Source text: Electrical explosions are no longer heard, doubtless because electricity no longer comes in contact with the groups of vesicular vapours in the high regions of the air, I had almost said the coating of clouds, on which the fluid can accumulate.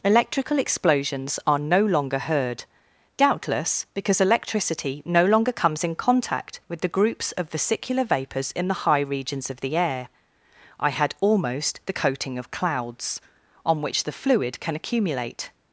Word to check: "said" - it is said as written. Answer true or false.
false